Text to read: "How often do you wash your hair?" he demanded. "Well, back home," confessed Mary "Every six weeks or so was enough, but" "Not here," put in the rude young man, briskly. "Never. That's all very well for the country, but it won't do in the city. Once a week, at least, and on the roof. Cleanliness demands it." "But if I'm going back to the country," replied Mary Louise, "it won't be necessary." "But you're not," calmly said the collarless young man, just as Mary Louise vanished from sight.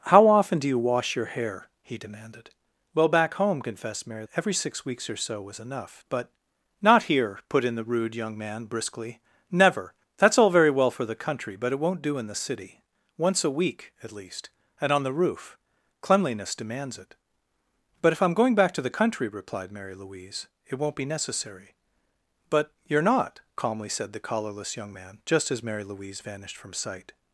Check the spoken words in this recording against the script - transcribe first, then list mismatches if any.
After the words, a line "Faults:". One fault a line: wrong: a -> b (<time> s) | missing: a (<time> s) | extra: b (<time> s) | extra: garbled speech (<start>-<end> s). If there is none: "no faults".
"How often do you wash your hair?" he demanded. "Well, back home," confessed Mary "Every six weeks or so was enough, but" "Not here," put in the rude young man, briskly. "Never. That's all very well for the country, but it won't do in the city. Once a week, at least, and on the roof. Cleanliness demands it." "But if I'm going back to the country," replied Mary Louise, "it won't be necessary." "But you're not," calmly said the collarless young man, just as Mary Louise vanished from sight.
Faults:
no faults